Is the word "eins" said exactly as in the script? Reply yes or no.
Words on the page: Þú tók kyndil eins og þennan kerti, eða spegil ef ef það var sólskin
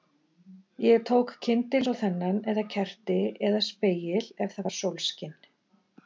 yes